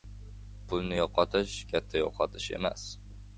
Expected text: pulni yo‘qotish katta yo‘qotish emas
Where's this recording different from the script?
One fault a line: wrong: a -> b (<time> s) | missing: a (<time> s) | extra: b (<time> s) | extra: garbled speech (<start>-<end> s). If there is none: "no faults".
no faults